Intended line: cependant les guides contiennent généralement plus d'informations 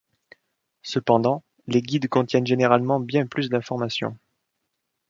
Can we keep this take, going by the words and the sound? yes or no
no